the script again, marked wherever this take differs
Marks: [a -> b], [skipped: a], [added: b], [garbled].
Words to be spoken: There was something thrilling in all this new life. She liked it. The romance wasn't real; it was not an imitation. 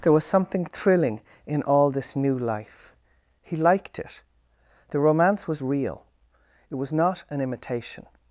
There was something thrilling in all this new life. [She -> He] liked it. The romance [wasn't -> was] real; it was not an imitation.